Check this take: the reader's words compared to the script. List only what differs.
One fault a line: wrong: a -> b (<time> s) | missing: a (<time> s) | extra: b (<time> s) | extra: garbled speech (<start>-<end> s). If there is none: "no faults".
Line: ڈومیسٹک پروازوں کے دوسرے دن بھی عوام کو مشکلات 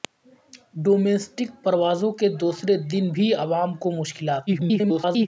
extra: garbled speech (4.5-5.3 s)